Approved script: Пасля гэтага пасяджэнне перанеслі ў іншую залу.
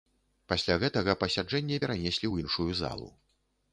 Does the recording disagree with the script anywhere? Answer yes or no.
no